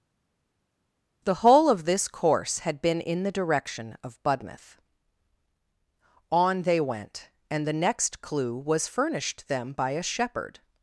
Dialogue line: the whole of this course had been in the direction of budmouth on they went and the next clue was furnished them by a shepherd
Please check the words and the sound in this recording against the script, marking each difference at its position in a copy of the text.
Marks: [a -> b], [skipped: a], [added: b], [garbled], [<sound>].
the whole of this course had been in the direction of budmouth on they went and the next clue was furnished them by a shepherd